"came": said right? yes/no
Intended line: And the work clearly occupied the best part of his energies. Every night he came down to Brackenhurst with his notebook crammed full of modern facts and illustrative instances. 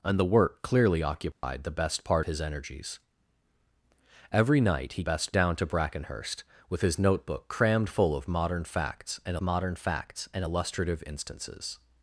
no